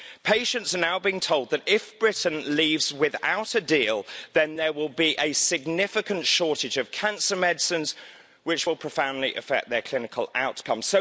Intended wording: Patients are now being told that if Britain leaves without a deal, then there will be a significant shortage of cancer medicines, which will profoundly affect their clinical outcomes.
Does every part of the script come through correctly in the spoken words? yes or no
yes